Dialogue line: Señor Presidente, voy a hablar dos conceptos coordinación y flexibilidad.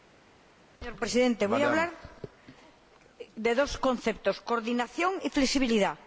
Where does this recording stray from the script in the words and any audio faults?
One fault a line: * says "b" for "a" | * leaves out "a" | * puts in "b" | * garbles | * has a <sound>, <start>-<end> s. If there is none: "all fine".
* puts in "de"